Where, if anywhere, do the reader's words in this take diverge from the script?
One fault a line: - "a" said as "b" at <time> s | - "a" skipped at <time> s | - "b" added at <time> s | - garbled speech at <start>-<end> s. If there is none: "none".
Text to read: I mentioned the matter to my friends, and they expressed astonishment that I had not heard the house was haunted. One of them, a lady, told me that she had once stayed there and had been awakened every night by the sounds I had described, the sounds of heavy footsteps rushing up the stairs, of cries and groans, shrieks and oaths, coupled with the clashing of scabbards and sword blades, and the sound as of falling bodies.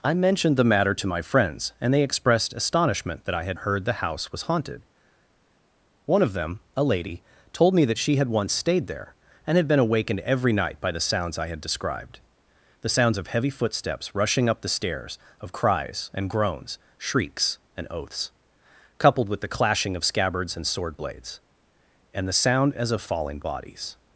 - "not" skipped at 3.6 s